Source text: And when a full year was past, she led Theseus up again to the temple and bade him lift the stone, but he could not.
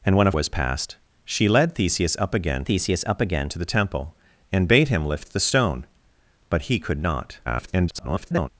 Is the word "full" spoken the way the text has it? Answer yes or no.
no